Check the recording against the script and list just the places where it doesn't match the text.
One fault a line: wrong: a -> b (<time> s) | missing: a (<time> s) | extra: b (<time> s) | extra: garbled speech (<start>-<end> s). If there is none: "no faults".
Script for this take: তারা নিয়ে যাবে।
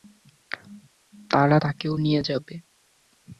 extra: তাকেও (1.5 s)